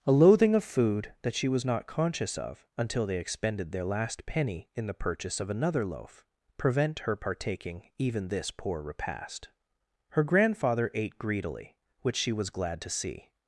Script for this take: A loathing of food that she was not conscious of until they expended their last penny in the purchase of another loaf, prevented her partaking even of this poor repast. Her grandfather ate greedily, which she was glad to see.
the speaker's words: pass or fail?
fail